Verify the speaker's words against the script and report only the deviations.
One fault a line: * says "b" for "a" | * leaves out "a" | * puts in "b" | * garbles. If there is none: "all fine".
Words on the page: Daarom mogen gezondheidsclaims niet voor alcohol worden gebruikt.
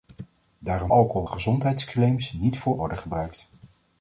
* says "alcohol" for "mogen"
* leaves out "alcohol"